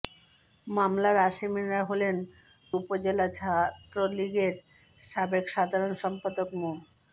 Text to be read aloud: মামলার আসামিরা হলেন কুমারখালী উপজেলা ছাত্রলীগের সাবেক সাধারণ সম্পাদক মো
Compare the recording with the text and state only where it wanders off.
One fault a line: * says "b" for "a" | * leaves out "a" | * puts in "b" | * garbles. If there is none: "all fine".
* leaves out "কুমারখালী"